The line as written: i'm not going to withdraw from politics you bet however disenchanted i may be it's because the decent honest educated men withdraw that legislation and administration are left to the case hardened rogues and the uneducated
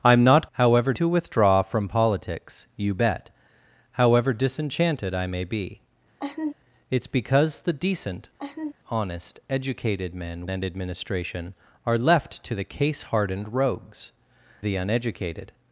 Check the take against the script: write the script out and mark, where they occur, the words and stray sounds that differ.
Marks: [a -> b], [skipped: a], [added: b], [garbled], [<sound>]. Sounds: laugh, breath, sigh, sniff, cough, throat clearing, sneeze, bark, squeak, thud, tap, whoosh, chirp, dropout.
i'm not [going -> however] to withdraw from politics you bet however disenchanted i may be [laugh] it's because the decent [laugh] honest educated men [skipped: withdraw that legislation] and administration are left to the case hardened rogues [skipped: and] the uneducated